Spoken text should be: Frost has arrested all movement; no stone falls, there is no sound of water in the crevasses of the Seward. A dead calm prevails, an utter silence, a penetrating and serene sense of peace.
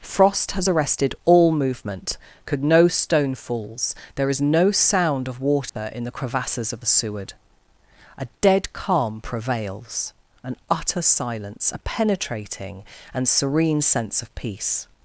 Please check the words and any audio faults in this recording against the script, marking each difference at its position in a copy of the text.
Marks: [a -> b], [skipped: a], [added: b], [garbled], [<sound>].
Frost has arrested all movement; [added: could] no stone falls, there is no sound of water [dropout] in the crevasses of the Seward. A dead calm prevails, an utter silence, a penetrating and serene sense of peace.